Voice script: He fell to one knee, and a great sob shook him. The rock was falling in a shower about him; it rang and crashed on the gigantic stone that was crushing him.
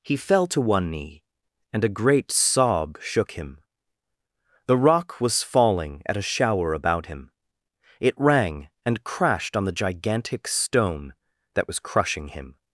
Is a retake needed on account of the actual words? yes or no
yes